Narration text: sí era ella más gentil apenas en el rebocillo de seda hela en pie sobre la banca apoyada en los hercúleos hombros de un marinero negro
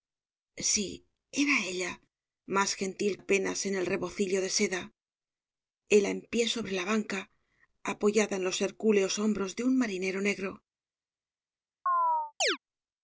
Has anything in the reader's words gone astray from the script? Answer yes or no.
no